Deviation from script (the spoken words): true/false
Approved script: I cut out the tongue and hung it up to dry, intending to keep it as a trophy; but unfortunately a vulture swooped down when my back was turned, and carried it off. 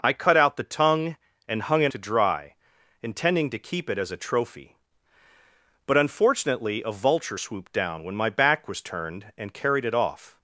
true